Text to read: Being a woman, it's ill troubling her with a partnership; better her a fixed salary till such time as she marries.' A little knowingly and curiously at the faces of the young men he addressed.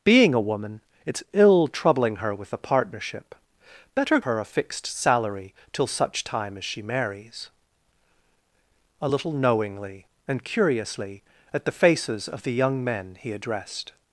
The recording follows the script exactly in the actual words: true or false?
true